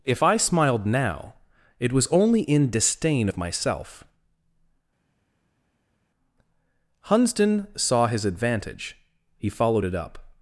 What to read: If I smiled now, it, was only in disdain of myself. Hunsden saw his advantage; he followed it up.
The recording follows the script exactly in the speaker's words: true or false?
true